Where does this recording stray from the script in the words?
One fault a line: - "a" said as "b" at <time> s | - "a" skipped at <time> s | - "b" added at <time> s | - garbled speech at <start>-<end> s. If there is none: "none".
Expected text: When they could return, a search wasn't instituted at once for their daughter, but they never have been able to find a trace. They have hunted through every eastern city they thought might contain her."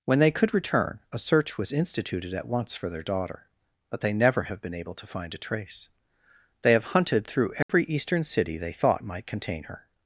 - "wasn't" said as "was" at 1.6 s